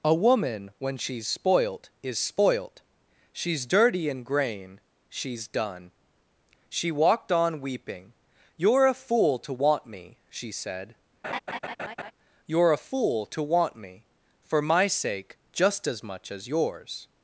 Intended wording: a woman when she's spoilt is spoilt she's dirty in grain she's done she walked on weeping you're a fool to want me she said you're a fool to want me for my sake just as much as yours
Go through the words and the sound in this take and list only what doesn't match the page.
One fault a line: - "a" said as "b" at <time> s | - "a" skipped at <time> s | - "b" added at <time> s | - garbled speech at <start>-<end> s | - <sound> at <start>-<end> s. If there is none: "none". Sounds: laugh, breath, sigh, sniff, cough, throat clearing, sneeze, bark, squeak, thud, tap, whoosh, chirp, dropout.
- laugh at 11.2-12.1 s